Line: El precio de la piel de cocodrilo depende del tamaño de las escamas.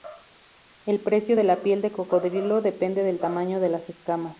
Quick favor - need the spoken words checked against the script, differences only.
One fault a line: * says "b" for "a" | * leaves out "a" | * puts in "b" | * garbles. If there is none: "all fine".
all fine